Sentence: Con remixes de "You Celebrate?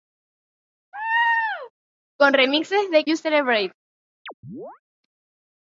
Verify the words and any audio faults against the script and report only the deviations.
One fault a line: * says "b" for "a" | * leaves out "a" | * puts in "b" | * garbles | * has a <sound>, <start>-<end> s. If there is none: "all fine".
* has a laugh, 0.9-1.7 s
* has a chirp, 4.3-4.8 s